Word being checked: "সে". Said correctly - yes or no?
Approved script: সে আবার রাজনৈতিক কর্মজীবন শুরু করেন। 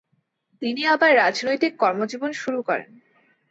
no